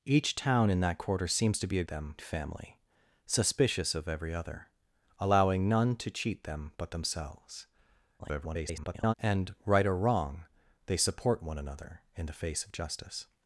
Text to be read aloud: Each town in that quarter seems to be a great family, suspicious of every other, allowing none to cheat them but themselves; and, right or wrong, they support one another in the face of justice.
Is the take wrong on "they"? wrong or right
right